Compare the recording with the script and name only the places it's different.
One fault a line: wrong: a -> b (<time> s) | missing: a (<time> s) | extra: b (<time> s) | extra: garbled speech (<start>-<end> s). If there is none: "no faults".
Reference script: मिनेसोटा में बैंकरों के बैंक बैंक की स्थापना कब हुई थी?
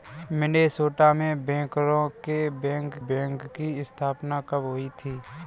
no faults